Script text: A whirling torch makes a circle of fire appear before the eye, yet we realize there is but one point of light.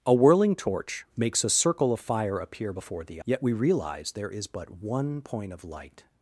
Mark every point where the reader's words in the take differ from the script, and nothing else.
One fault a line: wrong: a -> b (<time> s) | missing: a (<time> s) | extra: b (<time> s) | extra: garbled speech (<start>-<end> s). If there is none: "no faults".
missing: eye (3.2 s)